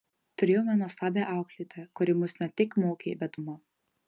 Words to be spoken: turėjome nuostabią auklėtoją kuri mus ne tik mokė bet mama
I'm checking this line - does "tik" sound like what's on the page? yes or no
yes